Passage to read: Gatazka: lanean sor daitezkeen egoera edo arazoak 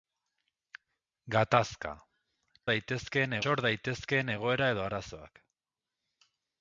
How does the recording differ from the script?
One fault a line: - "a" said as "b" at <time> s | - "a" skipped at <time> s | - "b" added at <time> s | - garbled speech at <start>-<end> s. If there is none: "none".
- "lanean" said as "daitezkeen" at 2.7 s